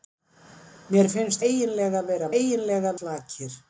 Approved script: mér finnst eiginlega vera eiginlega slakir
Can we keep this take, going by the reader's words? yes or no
yes